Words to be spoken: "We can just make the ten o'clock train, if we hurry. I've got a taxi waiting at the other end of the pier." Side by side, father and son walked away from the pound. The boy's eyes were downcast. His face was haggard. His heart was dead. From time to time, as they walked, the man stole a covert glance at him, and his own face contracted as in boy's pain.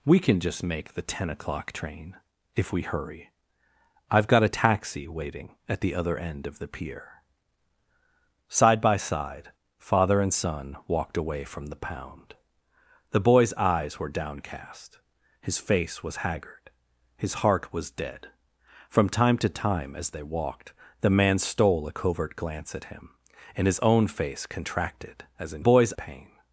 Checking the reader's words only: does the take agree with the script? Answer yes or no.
yes